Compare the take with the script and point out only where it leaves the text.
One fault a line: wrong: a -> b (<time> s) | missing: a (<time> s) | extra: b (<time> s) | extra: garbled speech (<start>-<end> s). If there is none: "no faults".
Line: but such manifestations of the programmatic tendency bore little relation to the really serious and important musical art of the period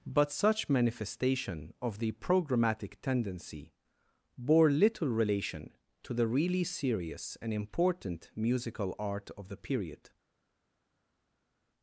wrong: manifestations -> manifestation (0.7 s)